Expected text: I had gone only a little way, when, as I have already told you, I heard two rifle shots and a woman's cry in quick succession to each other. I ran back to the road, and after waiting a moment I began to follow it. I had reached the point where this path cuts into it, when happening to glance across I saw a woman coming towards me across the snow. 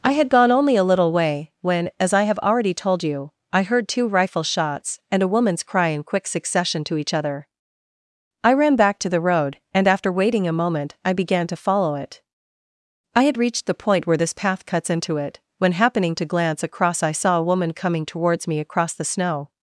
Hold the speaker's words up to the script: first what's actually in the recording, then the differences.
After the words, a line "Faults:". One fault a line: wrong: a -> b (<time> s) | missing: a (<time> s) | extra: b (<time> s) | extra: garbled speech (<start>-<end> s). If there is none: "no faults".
I had gone only a little way, when, as I have already told you, I heard two rifle shots and a woman's cry in quick succession to each other. I ran back to the road, and after waiting a moment I began to follow it. I had reached the point where this path cuts into it, when happening to glance across I saw a woman coming towards me across the snow.
Faults:
no faults